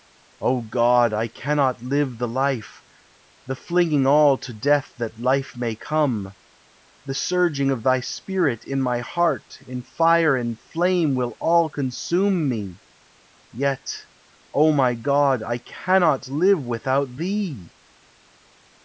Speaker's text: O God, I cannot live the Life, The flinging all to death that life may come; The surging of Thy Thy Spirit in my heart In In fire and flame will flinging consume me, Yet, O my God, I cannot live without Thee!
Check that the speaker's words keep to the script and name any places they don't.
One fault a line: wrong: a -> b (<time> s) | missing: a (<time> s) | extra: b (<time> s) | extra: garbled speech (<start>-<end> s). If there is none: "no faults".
missing: Thy (8.0 s)
missing: In (9.8 s)
wrong: flinging -> all (11.4 s)